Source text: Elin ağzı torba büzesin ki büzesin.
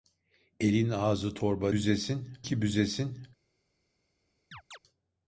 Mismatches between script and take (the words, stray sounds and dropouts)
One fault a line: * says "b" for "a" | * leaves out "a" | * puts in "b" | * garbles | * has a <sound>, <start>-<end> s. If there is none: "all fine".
* has a chirp, 4.5-4.8 s